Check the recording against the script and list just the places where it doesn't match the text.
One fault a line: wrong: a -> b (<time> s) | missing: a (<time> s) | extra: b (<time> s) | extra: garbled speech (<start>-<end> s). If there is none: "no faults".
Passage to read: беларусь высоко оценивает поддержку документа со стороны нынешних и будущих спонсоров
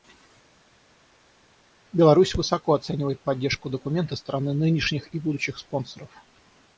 missing: со (4.1 s)